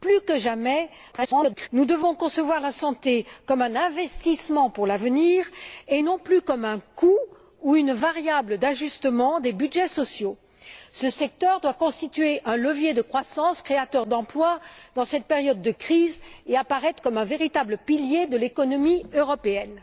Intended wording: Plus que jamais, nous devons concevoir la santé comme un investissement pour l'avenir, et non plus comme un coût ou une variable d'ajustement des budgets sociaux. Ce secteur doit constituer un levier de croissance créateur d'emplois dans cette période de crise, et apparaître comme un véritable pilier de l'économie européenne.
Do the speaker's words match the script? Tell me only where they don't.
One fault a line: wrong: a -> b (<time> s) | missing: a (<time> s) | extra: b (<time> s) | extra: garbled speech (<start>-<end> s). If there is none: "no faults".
extra: garbled speech (1.1-1.7 s)